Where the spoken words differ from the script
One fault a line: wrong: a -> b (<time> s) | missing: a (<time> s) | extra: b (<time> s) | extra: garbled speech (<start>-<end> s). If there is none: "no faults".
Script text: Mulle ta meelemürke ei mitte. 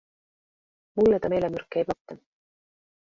no faults